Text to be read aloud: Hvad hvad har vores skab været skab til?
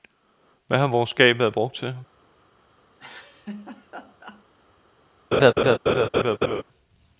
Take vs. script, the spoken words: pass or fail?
fail